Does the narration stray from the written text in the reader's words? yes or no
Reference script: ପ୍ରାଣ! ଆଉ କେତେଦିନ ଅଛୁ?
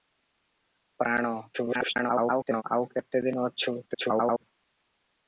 yes